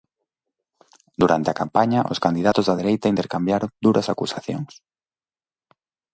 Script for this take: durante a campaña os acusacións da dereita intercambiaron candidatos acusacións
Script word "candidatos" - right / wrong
wrong